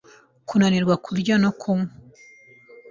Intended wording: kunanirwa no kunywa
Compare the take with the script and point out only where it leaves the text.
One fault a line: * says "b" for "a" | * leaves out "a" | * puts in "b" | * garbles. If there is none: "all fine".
* puts in "kurya"